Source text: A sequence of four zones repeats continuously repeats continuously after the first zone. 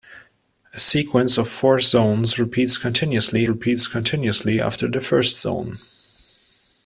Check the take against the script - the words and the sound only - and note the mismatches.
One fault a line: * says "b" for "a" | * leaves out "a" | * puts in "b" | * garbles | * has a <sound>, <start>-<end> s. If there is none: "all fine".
all fine